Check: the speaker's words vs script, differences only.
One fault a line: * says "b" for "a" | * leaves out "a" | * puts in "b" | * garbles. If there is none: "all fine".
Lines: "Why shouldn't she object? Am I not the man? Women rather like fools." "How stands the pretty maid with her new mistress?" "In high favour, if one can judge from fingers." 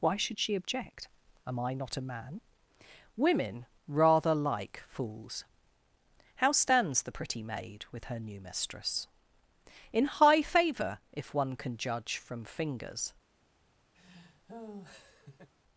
* says "should" for "shouldn't"
* says "a" for "the"